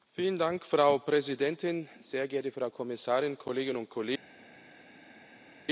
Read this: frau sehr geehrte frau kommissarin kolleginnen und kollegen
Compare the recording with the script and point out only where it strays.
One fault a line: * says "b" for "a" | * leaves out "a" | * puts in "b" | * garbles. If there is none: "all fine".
* puts in "präsidentin"